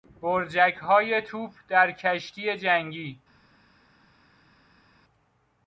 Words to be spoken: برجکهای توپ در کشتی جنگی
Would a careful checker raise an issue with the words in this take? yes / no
no